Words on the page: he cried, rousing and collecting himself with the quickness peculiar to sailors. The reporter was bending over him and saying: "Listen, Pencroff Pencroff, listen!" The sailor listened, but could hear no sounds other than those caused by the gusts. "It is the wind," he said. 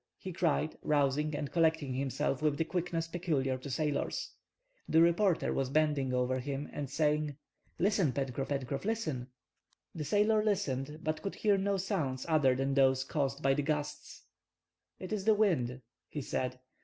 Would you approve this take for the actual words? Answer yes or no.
yes